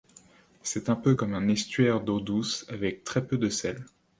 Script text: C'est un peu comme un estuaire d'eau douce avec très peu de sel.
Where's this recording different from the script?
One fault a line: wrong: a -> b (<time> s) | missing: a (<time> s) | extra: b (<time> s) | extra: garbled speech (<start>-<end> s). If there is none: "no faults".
no faults